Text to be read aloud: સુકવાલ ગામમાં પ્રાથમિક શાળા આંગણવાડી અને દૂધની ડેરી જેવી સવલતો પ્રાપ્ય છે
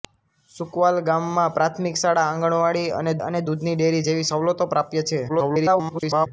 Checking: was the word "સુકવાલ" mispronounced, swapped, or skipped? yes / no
no